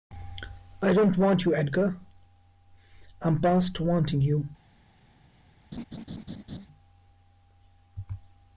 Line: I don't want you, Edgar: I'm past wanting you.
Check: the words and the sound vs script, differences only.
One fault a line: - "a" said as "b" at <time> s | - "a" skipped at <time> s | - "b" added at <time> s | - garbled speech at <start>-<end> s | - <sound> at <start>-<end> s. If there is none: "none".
- laugh at 5.7-6.7 s